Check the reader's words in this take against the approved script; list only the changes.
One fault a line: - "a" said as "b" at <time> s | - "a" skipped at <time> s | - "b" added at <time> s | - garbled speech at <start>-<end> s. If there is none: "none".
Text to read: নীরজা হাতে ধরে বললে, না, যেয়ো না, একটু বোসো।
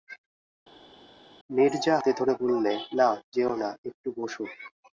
none